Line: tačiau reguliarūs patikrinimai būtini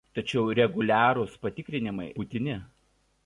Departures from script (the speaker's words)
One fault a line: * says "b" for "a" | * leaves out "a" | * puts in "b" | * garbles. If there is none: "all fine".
all fine